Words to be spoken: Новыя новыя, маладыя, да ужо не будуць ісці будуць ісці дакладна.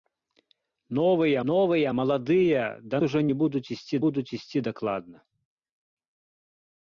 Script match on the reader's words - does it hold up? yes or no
yes